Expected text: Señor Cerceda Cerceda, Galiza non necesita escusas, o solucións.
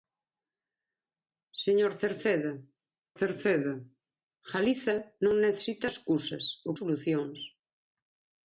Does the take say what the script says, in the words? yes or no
yes